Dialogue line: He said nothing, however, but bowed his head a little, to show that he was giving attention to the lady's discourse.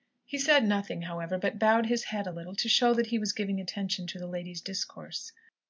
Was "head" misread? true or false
false